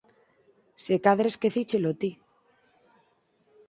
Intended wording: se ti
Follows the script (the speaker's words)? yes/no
no